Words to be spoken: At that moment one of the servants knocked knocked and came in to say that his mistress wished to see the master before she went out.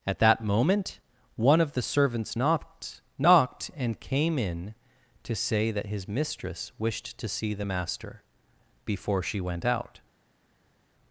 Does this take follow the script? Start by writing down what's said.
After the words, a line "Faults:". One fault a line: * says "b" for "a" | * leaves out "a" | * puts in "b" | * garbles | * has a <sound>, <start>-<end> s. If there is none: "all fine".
At that moment one of the servants knocked knocked and came in to say that his mistress wished to see the master before she went out.
Faults:
all fine